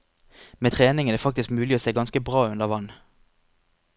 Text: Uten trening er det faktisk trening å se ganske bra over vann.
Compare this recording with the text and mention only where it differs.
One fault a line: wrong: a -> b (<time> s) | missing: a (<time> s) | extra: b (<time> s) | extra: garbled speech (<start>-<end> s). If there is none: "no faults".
wrong: Uten -> Med (0.6 s)
wrong: trening -> mulig (1.5 s)
wrong: over -> under (2.5 s)